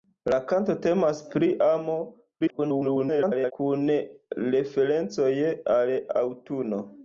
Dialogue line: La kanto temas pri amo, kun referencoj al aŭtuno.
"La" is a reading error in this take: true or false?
false